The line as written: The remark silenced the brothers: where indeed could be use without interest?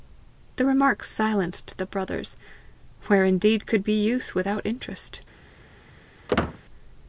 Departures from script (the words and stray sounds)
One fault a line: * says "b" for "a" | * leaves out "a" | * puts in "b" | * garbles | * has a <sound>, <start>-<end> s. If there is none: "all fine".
* has a squeak, 6.3-6.6 s